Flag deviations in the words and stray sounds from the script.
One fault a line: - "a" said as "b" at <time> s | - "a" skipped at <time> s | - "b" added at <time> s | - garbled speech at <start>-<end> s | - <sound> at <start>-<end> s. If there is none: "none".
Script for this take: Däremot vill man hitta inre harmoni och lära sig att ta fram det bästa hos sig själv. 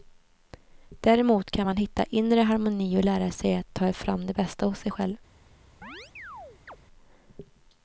- "vill" said as "kan" at 1.5 s
- chirp at 5.8-6.8 s